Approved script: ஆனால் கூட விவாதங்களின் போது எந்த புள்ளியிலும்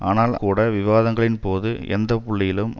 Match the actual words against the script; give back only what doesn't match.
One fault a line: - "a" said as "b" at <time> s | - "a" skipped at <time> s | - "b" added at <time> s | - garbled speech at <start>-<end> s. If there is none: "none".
none